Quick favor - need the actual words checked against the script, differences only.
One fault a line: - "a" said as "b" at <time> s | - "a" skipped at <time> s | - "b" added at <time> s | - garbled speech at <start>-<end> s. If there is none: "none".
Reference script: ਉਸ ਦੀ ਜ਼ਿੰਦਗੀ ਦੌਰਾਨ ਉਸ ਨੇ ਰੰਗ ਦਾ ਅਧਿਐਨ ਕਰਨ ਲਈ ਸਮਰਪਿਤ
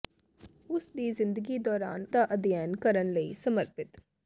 - "ਉਸ ਨੇ ਰੰਗ" skipped at 2.1 s